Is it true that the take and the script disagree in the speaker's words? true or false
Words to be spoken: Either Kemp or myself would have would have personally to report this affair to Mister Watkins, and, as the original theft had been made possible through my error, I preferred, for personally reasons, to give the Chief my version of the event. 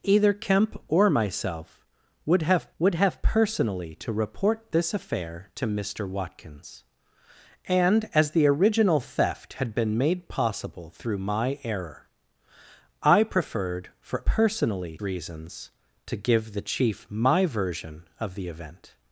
false